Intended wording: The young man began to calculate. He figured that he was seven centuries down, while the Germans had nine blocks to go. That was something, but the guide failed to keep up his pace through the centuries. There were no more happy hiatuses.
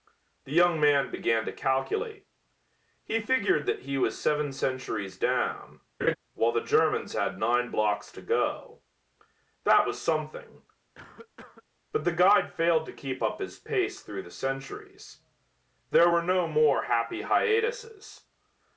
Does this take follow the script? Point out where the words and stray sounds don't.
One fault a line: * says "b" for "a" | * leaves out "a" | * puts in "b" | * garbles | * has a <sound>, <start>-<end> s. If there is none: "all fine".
* has a laugh, 6.0-6.2 s
* has a cough, 11.0-11.6 s